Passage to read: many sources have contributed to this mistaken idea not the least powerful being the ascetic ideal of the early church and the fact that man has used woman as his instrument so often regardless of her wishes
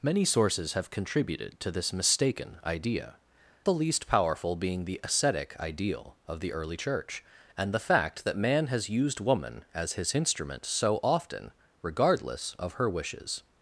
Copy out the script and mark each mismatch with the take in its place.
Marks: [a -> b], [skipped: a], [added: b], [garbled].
many sources have contributed to this mistaken idea [skipped: not] the least powerful being the ascetic ideal of the early church and the fact that man has used woman as his instrument so often regardless of her wishes